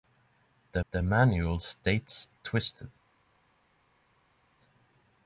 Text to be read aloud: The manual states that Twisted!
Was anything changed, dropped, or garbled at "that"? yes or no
yes